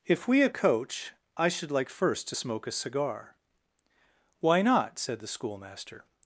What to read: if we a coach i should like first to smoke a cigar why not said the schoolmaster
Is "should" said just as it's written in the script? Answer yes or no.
yes